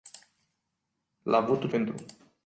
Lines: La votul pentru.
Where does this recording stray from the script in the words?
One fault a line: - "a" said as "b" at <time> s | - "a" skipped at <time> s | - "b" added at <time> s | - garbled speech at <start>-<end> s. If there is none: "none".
none